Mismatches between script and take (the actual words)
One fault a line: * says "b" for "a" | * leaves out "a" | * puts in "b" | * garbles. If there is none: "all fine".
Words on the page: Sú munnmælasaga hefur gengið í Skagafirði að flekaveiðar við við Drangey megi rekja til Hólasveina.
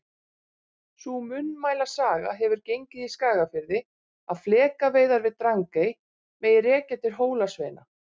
* leaves out "við"